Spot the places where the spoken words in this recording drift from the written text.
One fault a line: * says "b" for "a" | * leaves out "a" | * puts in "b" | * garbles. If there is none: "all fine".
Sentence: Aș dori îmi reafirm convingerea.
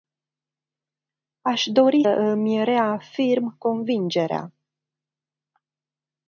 all fine